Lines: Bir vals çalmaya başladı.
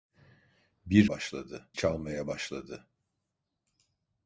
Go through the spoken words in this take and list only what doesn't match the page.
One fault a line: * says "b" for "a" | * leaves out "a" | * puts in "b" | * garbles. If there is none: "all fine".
* says "başladı" for "vals"